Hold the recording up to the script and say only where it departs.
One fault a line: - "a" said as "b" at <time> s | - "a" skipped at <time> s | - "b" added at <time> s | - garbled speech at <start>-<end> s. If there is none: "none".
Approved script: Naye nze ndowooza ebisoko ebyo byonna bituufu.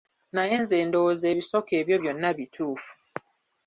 none